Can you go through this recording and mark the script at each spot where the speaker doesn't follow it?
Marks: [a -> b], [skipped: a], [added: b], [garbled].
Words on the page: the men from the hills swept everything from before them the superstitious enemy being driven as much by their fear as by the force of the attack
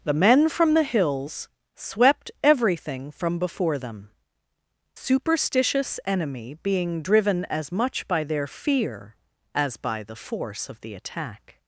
the men from the hills swept everything from before them [skipped: the] superstitious enemy being driven as much by their fear as by the force of the attack